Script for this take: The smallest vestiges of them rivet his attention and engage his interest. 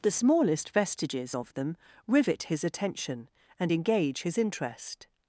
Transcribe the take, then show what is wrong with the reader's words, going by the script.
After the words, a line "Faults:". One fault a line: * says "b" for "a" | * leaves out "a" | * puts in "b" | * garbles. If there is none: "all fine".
The smallest vestiges of them rivet his attention and engage his interest.
Faults:
all fine